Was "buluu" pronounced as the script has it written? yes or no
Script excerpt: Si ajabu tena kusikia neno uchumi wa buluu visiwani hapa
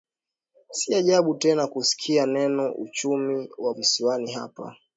no